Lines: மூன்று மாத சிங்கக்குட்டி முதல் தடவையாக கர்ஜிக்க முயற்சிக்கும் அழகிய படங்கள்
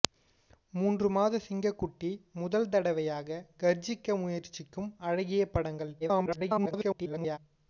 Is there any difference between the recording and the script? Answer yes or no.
yes